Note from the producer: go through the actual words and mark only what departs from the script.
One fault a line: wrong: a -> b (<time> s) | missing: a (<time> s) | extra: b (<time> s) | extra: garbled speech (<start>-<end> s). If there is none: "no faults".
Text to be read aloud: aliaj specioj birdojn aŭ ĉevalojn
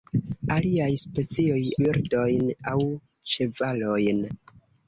no faults